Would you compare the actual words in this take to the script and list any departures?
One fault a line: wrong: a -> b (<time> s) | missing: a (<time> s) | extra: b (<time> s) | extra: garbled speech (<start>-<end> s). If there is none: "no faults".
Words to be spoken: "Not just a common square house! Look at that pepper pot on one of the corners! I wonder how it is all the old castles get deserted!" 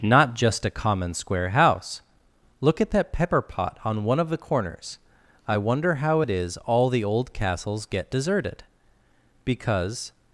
extra: Because (9.4 s)